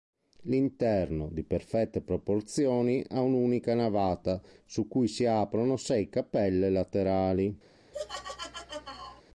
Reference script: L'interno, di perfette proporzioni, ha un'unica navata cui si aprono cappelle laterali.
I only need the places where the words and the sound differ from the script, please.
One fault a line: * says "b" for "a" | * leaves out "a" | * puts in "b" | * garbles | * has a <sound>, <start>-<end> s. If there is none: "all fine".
* puts in "su"
* puts in "sei"
* has a laugh, 7.9-9.2 s